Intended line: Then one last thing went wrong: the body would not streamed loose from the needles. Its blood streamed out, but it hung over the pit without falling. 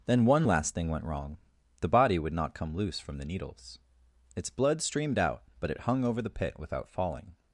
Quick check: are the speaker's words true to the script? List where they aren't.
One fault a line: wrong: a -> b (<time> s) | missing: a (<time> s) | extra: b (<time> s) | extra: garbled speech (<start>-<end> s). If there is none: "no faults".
wrong: streamed -> come (2.5 s)